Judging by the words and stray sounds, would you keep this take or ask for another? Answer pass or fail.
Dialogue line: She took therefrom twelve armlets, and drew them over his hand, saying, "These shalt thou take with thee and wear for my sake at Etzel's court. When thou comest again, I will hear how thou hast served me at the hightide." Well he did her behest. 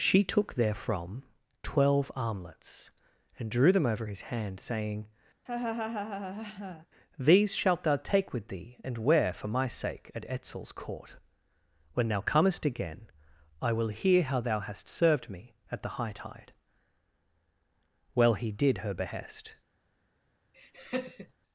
fail